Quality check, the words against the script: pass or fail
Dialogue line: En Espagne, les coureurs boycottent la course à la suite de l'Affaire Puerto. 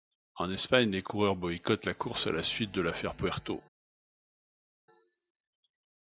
pass